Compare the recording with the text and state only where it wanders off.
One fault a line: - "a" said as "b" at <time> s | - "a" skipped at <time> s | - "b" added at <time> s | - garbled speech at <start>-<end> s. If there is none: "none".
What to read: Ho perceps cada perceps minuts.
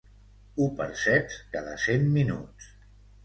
- "perceps" said as "cent" at 1.9 s